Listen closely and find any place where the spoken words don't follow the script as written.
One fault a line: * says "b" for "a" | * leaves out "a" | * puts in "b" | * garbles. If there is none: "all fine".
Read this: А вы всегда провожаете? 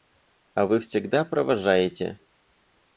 all fine